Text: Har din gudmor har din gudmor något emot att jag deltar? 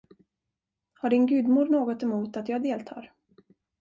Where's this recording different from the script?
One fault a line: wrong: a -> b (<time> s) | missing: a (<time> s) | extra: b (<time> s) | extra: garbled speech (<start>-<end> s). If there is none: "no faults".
missing: har din gudmor (1.6 s)